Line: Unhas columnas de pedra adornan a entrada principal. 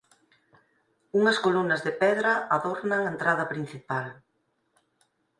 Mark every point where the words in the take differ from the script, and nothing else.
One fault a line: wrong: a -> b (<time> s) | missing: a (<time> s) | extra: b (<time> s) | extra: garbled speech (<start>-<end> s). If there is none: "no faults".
no faults